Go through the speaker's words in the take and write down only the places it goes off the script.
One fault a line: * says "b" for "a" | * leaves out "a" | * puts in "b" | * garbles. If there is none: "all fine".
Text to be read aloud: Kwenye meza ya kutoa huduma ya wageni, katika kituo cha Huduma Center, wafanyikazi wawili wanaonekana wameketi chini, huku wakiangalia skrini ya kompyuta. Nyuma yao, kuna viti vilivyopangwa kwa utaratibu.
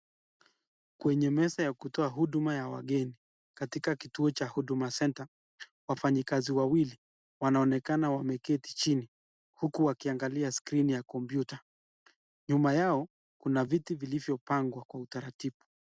all fine